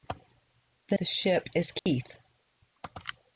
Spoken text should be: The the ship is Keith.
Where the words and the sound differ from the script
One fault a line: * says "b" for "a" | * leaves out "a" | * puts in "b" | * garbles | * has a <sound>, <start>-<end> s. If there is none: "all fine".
* has a dropout, 1.8-1.9 s